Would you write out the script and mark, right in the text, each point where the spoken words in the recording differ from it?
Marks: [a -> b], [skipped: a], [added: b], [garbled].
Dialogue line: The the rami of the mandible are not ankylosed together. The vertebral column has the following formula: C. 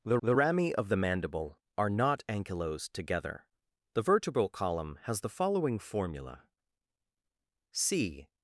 The the rami of the mandible are not ankylosed together. The vertebral column has the following formula: C.